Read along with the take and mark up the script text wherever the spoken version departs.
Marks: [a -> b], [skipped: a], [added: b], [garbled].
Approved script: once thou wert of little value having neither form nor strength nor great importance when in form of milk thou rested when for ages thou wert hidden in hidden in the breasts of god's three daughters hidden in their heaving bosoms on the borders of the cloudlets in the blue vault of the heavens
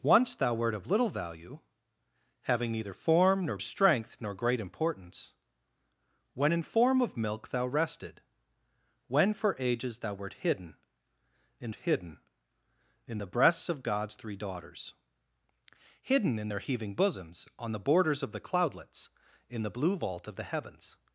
once thou wert of little value having neither form nor strength nor great importance when in form of milk thou rested when for ages thou wert hidden in hidden in the breasts of god's three daughters hidden in their heaving bosoms on the borders of the cloudlets in the blue vault of the heavens